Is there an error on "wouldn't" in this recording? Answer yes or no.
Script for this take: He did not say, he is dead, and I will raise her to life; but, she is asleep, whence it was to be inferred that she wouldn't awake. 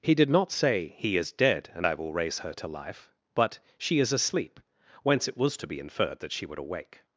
yes